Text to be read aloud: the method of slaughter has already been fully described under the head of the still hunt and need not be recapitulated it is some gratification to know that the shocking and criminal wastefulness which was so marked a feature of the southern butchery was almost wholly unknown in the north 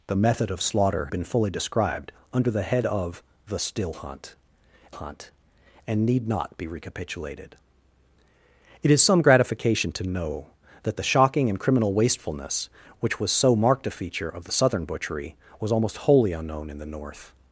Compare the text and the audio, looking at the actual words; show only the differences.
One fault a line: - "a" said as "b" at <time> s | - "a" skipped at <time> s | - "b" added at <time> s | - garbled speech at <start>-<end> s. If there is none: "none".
- "has already" skipped at 1.1 s
- "hunt" added at 4.9 s